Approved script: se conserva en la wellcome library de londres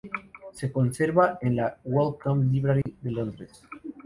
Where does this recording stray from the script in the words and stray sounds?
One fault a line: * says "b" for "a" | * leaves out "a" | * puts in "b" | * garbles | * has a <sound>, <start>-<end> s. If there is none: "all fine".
* has a dropout, 2.8-2.9 s